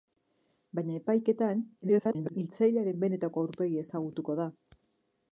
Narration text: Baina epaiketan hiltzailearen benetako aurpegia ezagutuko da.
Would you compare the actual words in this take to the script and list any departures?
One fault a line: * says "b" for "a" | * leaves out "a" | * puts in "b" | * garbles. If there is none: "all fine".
* garbles